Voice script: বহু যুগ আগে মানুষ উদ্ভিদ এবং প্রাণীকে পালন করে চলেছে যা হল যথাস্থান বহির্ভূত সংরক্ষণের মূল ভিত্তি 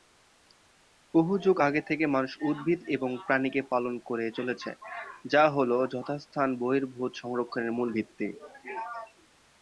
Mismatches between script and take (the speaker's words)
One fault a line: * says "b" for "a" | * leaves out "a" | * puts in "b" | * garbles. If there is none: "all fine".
* puts in "থেকে"